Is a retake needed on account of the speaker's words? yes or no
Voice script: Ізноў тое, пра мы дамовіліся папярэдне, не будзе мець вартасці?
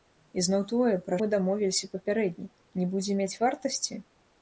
no